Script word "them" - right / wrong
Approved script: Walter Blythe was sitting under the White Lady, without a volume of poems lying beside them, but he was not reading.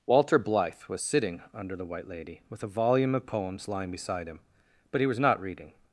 wrong